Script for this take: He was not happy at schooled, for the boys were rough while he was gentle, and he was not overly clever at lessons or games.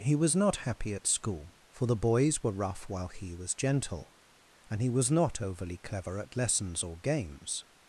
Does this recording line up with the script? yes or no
no